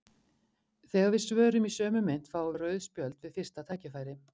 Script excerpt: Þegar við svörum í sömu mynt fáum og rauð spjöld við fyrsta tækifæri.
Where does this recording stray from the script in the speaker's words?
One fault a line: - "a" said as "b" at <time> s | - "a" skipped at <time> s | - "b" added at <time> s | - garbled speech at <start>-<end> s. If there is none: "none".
none